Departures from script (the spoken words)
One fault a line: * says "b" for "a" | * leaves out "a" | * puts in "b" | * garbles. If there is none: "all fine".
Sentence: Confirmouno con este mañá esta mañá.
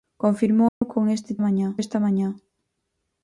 all fine